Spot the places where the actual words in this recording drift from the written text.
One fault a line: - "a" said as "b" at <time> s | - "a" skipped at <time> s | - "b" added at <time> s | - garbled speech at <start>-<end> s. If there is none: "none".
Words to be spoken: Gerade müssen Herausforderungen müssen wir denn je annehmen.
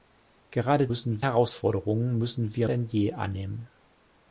none